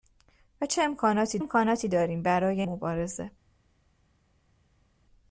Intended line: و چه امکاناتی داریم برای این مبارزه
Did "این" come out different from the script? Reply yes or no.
yes